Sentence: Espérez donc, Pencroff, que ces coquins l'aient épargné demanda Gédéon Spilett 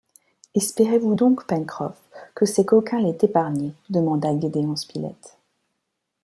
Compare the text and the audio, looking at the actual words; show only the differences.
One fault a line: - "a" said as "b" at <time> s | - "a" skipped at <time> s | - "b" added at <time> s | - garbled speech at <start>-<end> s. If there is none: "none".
- "vous" added at 1.0 s